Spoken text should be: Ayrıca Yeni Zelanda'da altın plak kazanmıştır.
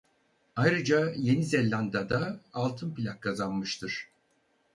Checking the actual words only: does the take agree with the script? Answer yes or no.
yes